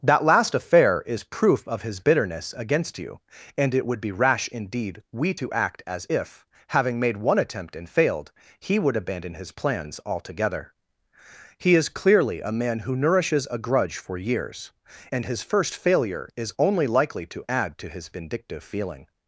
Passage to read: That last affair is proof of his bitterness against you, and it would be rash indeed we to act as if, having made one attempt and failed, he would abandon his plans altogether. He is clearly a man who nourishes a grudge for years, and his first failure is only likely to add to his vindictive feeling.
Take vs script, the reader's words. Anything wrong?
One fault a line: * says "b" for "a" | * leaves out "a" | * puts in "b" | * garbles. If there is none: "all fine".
all fine